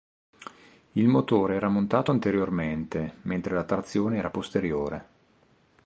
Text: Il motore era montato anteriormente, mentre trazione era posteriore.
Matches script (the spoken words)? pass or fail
fail